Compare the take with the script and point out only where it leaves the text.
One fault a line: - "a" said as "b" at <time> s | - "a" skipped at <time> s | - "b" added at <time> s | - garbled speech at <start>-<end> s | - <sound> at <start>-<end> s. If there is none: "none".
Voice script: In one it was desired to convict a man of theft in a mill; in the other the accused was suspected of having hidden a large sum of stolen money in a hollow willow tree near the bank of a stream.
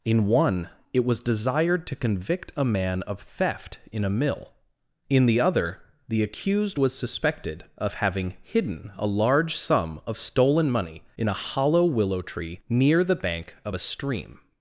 none